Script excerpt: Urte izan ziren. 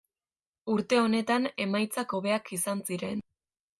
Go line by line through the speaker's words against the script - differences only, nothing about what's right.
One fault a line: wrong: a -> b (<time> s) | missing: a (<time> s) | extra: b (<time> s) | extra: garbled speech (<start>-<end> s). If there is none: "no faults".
extra: honetan emaitzak hobeak (1.0 s)